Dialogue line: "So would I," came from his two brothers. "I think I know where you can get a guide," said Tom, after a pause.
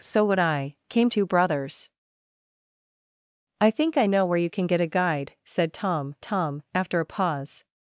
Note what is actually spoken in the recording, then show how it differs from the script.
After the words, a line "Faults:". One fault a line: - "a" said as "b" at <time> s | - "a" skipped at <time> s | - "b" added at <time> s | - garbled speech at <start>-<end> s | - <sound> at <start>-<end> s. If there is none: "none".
"So would I," came two brothers. "I think I know where you can get a guide," said Tom Tom, after a pause.
Faults:
- "from his" skipped at 1.1 s
- "Tom" added at 6.2 s